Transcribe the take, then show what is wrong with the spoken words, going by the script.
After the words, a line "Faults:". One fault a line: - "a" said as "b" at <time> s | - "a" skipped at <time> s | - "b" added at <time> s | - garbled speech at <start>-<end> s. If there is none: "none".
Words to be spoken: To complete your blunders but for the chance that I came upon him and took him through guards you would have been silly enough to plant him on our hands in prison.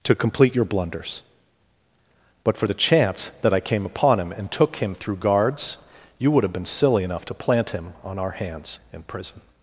To complete your blunders but for the chance that I came upon him and took him through guards you would have been silly enough to plant him on our hands in prison.
Faults:
none